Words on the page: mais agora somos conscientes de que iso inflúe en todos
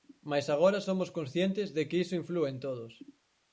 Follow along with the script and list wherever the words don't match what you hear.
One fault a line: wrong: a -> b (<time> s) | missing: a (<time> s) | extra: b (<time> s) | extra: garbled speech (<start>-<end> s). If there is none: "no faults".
no faults